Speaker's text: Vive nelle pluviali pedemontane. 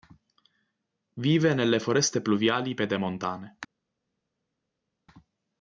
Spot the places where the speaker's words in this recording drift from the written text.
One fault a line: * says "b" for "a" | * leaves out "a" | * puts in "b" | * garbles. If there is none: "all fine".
* puts in "foreste"